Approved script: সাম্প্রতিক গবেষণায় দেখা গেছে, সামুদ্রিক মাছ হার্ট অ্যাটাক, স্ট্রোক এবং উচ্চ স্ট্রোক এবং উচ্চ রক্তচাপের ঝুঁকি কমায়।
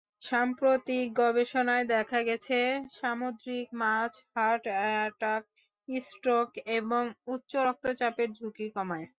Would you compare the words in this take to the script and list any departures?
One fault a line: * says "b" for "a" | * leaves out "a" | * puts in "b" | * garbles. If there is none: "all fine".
* leaves out "স্ট্রোক এবং উচ্চ"